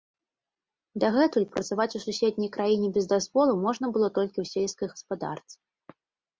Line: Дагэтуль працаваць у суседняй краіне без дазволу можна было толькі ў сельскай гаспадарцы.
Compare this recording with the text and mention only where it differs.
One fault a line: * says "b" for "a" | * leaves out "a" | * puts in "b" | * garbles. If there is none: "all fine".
all fine